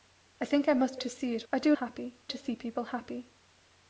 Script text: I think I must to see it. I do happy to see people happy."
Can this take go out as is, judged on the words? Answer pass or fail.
pass